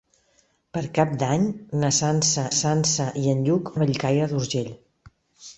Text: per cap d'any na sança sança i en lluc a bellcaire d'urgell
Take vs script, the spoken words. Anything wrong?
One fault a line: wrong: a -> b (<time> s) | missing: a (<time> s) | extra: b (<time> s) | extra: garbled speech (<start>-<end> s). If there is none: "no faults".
no faults